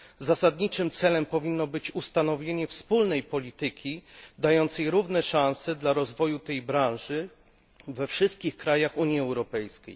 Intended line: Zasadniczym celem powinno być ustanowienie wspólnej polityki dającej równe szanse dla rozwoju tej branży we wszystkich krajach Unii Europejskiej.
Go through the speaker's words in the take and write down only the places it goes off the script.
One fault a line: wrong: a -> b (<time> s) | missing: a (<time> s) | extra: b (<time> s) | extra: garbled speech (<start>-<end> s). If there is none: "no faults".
no faults